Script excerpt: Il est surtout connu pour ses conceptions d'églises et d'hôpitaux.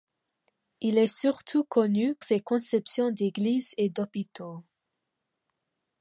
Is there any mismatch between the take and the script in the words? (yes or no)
yes